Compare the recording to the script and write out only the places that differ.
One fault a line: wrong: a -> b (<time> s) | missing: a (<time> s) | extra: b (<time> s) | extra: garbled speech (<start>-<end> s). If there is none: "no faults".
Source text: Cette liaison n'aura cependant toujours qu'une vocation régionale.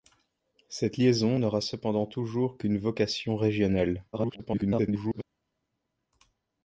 extra: garbled speech (4.1-5.2 s)